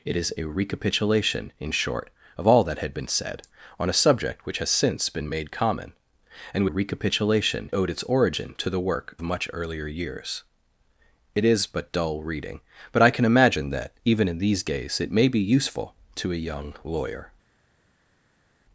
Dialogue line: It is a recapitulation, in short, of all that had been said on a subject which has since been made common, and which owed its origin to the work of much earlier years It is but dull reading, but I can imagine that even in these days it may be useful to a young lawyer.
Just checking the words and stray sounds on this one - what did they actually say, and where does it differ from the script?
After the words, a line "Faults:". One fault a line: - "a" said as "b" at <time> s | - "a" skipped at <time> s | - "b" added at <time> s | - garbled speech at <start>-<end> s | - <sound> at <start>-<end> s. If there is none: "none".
It is a recapitulation, in short, of all that had been said on a subject which has since been made common, and recapitulation owed its origin to the work much earlier years It is but dull reading, but I can imagine that even in these days it may be useful to a young lawyer.
Faults:
- "which" said as "recapitulation" at 6.6 s
- "of" skipped at 9.1 s